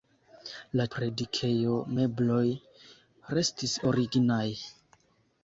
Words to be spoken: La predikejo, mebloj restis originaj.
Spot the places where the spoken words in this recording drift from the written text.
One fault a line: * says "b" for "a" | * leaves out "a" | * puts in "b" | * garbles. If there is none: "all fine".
all fine